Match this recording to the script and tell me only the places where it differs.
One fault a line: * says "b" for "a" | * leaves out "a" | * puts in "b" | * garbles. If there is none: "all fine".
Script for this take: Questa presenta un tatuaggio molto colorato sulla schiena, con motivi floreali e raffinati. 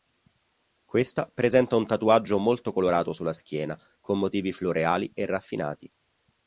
all fine